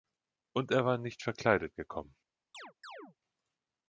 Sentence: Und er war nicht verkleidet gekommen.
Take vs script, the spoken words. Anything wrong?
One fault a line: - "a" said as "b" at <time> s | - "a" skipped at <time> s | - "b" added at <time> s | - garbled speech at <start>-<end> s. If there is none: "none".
none